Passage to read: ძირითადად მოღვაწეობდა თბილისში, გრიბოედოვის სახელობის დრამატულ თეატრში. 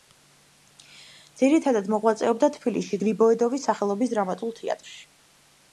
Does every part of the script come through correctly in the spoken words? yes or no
yes